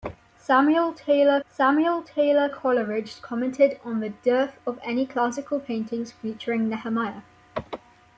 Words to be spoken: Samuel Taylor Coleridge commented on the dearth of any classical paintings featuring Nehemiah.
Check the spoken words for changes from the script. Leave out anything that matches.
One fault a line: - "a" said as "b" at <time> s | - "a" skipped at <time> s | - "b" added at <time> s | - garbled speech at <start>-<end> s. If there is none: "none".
- "samuel Taylor" added at 1.5 s